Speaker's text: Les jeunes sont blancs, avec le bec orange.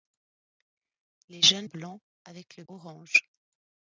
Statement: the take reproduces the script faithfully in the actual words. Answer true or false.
false